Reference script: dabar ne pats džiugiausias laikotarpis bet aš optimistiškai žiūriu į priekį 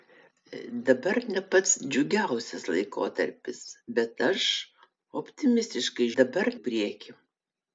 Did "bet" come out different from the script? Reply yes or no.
no